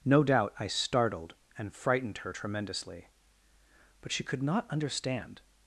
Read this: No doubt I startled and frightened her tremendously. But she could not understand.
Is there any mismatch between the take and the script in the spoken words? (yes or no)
no